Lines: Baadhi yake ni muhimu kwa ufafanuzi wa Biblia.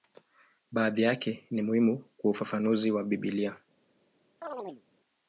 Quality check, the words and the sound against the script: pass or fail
fail